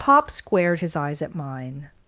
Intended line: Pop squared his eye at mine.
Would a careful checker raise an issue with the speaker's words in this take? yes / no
yes